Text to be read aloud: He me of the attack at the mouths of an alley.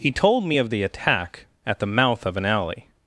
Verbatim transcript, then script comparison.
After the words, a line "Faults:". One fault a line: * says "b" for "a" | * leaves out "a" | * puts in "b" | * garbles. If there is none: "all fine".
He told me of the attack at the mouth of an alley.
Faults:
* puts in "told"
* says "mouth" for "mouths"